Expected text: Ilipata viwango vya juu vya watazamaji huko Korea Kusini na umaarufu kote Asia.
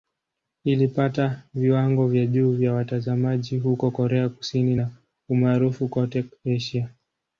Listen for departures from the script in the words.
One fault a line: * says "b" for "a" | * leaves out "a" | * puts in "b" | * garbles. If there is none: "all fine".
all fine